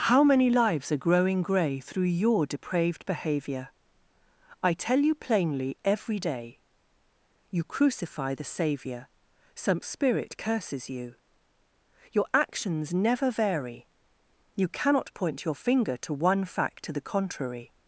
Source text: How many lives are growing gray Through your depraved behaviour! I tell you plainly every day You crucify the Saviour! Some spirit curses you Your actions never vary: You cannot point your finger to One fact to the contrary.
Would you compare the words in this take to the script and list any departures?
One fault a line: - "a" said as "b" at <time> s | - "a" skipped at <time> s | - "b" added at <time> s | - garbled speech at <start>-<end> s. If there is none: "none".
none